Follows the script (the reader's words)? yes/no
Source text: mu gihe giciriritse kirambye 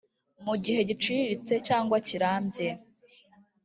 no